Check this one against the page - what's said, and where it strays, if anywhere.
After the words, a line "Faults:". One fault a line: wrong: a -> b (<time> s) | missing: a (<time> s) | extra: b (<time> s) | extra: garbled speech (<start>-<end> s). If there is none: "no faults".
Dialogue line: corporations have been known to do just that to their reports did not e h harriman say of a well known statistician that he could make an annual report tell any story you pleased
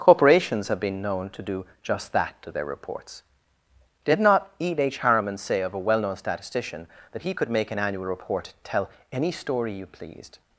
corporations have been known to do just that to their reports did not e h harriman say of a well known statistician that he could make an annual report tell any story you pleased
Faults:
no faults